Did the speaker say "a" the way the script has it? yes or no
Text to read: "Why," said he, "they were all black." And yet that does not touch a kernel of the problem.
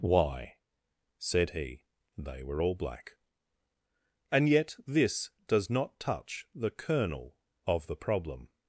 no